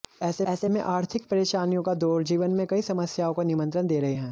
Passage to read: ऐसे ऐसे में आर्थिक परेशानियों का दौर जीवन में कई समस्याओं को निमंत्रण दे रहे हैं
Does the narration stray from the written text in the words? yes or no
no